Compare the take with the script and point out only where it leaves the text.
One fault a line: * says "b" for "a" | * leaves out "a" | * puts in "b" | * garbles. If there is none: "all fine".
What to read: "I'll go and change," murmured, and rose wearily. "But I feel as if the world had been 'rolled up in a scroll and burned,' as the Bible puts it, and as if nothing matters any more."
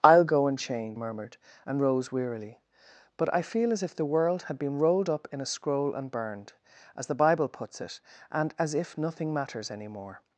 all fine